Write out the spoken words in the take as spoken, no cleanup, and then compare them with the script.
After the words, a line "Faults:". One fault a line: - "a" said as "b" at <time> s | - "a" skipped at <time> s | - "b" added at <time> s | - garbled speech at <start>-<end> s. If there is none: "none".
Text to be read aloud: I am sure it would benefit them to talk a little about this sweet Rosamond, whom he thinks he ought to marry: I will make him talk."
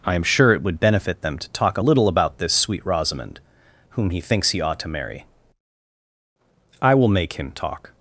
I am sure it would benefit them to talk a little about this sweet Rosamond, whom he thinks he ought to marry: I will make him talk."
Faults:
none